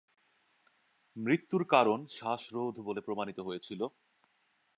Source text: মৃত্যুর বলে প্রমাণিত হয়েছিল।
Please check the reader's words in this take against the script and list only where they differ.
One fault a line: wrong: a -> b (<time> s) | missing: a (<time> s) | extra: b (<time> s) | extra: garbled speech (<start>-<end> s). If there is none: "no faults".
extra: কারণ শ্বাসরোধ (1.6 s)